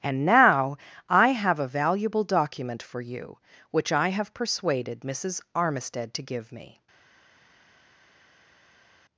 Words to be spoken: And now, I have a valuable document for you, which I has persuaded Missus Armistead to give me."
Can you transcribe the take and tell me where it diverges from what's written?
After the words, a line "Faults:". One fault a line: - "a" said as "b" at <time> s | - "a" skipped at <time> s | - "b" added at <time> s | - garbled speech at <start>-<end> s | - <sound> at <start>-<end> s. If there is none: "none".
And now, I have a valuable document for you, which I have persuaded Missus Armistead to give me."
Faults:
- "has" said as "have" at 4.1 s